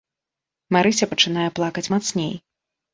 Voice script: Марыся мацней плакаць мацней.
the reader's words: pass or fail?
fail